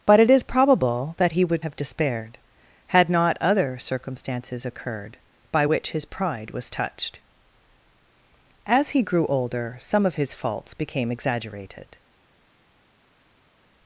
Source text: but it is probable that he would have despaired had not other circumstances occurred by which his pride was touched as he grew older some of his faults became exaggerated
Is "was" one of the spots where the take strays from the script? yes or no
no